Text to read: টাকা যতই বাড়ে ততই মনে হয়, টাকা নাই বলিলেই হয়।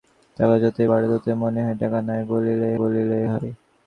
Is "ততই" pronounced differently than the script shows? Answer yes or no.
no